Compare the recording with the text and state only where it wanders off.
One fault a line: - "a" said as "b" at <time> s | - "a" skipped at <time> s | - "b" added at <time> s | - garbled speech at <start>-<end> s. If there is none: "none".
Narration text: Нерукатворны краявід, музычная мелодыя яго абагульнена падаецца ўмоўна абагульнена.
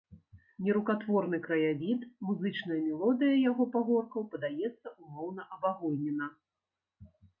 - "абагульнена" said as "пагоркаў" at 3.8 s